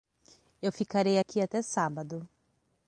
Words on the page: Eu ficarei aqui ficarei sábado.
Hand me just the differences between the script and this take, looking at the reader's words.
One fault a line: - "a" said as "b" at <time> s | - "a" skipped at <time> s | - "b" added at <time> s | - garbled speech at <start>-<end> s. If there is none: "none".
- "ficarei" said as "até" at 1.4 s